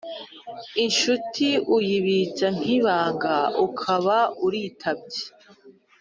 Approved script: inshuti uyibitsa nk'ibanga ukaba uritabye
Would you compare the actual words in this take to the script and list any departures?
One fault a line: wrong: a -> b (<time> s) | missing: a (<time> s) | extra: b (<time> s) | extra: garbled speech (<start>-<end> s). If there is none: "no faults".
no faults